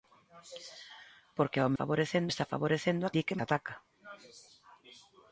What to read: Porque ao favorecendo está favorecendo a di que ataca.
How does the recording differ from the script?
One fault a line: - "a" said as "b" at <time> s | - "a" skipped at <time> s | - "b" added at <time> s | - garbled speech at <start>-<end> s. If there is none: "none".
none